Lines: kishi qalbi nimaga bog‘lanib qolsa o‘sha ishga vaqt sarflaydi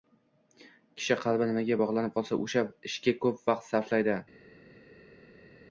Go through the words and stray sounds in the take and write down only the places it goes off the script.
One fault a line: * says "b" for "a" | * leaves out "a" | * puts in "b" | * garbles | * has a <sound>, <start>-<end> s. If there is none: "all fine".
* puts in "ko‘p"